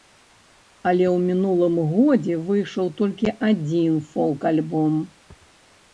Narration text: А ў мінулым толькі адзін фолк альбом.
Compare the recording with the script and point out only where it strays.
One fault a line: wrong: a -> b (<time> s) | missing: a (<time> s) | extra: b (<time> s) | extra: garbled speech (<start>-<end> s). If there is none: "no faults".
wrong: А -> Але (0.9 s)
extra: годзе выйшаў (1.9 s)